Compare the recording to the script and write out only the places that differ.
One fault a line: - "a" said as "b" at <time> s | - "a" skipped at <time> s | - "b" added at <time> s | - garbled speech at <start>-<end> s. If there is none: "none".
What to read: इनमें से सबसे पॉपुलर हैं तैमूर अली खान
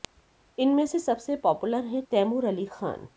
none